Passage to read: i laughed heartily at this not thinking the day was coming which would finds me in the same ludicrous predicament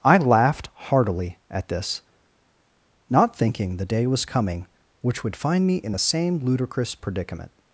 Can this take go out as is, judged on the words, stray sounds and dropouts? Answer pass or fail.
fail